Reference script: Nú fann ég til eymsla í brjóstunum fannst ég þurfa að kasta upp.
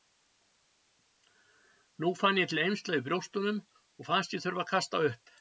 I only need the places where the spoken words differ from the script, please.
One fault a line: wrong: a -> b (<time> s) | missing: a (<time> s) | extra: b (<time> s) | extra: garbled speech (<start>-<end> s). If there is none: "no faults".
extra: og (3.8 s)